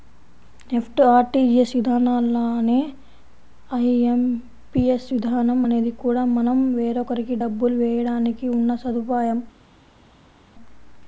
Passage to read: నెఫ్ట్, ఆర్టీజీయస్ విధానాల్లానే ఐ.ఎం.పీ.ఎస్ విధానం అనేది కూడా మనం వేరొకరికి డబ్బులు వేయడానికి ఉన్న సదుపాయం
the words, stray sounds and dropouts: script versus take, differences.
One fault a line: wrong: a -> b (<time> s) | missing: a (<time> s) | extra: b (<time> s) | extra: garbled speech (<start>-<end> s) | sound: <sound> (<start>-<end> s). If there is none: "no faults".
no faults